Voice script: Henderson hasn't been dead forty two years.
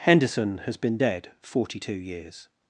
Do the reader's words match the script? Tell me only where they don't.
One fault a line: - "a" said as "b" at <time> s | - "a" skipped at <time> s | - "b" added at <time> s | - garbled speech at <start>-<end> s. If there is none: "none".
- "hasn't" said as "has" at 0.7 s